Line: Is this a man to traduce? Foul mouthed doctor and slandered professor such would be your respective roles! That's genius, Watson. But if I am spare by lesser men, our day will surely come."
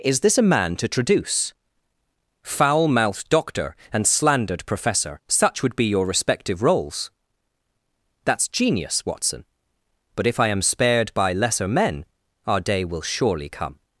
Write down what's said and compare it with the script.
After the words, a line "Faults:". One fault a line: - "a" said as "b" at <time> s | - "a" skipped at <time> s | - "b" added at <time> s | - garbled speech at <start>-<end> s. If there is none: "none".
Is this a man to traduce? Foul mouthed doctor and slandered professor such would be your respective roles! That's genius, Watson. But if I am spared by lesser men, our day will surely come."
Faults:
- "spare" said as "spared" at 10.6 s